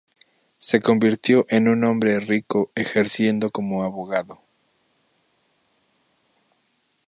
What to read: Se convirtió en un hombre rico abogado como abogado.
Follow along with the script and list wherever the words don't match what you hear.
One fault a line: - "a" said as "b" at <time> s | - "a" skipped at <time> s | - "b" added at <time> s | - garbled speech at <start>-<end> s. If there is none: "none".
- "abogado" said as "ejerciendo" at 2.7 s